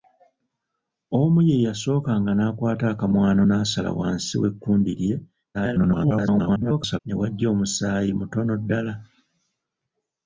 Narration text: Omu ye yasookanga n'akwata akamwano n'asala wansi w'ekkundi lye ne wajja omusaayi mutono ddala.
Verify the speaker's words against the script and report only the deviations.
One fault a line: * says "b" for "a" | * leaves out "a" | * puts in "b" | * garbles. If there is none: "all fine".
* garbles